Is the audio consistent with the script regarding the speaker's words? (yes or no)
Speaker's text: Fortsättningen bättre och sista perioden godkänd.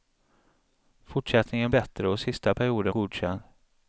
yes